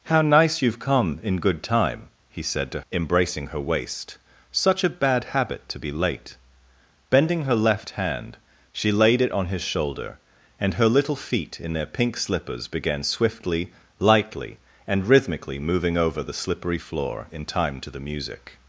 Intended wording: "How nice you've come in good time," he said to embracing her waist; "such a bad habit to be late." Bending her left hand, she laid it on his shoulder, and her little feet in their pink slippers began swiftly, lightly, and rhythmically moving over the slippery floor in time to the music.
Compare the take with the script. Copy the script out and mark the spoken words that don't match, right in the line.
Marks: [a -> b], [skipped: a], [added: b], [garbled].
"How nice you've come in good time," he said to embracing her waist; "such a bad habit to be late." Bending her left hand, she laid it on his shoulder, and her little feet in their pink slippers began swiftly, lightly, and rhythmically moving over the slippery floor in time to the music.